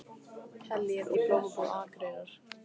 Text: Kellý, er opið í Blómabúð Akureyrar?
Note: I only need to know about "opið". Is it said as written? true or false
false